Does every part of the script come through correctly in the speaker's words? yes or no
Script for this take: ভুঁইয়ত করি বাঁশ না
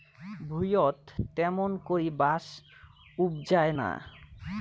no